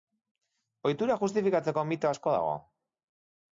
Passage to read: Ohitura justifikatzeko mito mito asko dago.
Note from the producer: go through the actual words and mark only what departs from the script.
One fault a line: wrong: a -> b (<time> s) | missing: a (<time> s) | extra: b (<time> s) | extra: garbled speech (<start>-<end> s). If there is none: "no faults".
missing: mito (2.1 s)